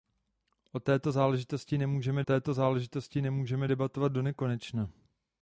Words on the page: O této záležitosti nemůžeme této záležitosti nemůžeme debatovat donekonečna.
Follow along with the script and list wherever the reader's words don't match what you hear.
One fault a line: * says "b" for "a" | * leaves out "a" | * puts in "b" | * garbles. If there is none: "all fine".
all fine